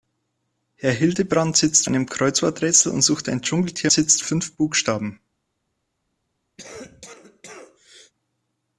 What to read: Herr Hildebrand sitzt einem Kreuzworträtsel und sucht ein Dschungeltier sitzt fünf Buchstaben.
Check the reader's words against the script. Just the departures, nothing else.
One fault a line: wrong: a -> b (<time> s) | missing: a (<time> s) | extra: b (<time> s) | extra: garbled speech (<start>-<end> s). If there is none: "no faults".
no faults